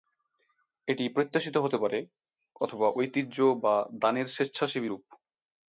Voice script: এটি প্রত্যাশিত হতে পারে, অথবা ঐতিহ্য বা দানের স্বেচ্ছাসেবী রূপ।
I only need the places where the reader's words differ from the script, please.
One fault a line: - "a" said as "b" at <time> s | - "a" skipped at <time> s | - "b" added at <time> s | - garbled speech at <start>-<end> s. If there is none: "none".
none